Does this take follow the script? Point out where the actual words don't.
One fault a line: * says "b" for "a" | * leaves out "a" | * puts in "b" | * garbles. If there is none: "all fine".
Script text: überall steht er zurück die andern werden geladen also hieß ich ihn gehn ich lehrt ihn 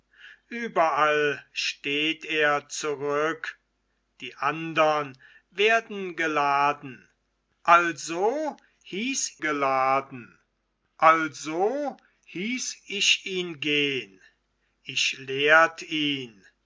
* puts in "geladen also hieß"